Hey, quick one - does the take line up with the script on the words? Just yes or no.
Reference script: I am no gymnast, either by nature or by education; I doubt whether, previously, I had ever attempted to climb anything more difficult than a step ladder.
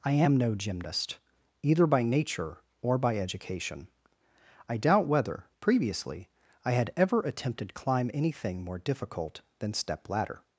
no